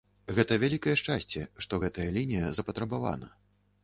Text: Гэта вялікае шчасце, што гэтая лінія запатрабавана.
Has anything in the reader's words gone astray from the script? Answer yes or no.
no